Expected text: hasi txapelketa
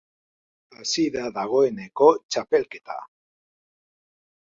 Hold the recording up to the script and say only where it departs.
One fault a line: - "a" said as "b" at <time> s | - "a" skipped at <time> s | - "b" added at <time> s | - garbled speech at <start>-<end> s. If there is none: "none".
- "da dagoeneko" added at 1.1 s